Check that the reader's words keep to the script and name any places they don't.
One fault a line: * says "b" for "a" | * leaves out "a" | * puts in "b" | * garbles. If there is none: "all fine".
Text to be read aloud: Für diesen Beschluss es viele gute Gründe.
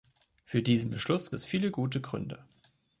all fine